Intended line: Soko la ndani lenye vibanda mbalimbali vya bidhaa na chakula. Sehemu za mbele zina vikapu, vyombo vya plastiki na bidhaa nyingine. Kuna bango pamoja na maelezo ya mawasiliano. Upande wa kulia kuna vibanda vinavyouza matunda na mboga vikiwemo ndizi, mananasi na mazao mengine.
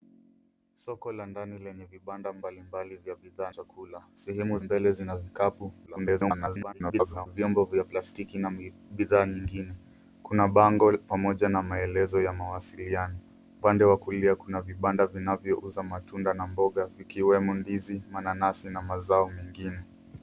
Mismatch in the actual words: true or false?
true